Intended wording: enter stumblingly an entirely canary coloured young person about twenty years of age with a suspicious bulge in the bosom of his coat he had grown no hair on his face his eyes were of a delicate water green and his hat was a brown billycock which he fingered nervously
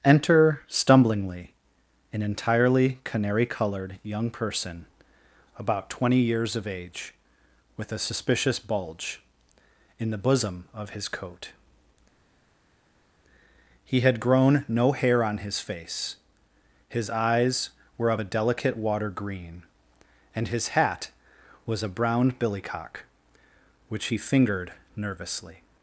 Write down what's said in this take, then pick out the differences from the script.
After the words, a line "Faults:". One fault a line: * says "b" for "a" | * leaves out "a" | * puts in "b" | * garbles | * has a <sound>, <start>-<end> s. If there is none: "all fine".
enter stumblingly an entirely canary coloured young person about twenty years of age with a suspicious bulge in the bosom of his coat he had grown no hair on his face his eyes were of a delicate water green and his hat was a brown billycock which he fingered nervously
Faults:
all fine